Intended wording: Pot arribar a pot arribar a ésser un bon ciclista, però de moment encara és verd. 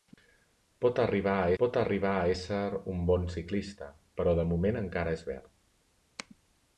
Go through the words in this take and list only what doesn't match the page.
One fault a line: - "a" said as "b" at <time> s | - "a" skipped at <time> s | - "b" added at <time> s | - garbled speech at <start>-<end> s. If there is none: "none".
none